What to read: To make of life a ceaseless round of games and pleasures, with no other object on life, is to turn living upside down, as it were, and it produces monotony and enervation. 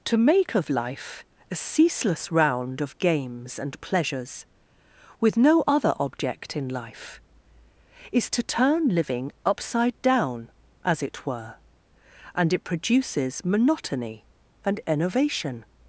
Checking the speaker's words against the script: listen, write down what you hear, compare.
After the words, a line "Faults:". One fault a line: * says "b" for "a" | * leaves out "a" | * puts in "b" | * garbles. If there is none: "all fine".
To make of life a ceaseless round of games and pleasures, with no other object in life, is to turn living upside down, as it were, and it produces monotony and enervation.
Faults:
* says "in" for "on"